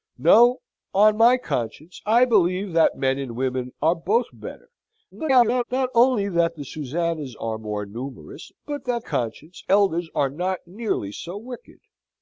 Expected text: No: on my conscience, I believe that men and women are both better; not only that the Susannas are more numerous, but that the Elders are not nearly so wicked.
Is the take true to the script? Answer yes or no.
no